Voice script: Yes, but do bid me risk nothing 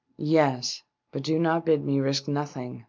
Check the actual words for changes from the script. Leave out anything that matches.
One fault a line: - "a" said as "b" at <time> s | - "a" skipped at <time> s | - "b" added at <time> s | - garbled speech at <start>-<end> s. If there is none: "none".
- "not" added at 1.4 s